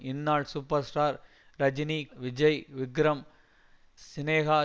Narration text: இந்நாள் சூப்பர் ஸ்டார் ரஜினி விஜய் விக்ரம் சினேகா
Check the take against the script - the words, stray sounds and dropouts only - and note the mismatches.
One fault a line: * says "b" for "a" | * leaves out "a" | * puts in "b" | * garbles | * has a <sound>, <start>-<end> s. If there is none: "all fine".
all fine